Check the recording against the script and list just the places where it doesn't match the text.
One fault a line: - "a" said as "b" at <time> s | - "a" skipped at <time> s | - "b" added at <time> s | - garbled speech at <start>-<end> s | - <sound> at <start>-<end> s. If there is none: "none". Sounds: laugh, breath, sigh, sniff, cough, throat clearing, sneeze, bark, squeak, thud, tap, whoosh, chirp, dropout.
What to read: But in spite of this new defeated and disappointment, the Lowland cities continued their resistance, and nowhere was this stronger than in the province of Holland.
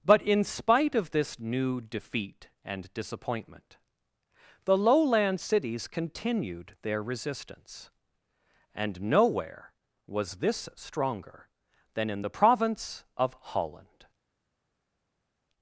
- "defeated" said as "defeat" at 1.8 s